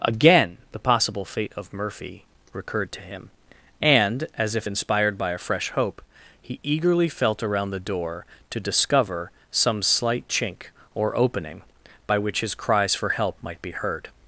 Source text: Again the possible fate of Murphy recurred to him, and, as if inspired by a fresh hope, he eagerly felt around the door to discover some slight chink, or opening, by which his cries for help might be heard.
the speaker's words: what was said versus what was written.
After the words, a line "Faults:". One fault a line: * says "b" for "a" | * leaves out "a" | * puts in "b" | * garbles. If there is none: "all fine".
Again the possible fate of Murphy recurred to him, and, as if inspired by a fresh hope, he eagerly felt around the door to discover some slight chink, or opening, by which his cries for help might be heard.
Faults:
all fine